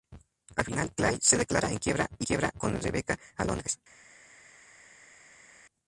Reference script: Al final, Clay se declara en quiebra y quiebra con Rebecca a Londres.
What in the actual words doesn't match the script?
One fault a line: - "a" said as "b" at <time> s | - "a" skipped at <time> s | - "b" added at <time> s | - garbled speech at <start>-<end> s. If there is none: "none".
none